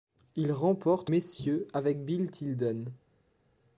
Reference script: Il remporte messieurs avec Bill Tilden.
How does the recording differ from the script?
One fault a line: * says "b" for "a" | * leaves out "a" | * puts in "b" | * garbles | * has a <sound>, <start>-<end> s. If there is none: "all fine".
all fine